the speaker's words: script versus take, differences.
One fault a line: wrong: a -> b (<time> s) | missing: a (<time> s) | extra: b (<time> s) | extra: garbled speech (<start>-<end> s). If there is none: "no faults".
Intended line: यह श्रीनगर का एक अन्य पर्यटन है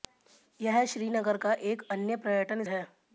no faults